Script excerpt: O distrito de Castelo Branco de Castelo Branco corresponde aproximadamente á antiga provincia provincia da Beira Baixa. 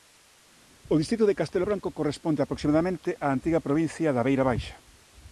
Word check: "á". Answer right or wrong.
right